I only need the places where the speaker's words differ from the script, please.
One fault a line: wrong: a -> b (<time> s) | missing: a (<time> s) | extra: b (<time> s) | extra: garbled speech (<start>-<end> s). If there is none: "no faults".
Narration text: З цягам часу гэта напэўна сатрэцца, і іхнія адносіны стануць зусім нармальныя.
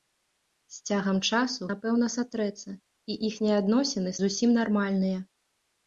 missing: гэта (1.7 s)
missing: стануць (4.1 s)